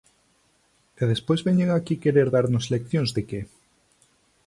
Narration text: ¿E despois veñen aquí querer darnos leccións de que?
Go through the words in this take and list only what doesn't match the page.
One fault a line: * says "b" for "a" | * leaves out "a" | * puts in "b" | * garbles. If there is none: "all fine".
all fine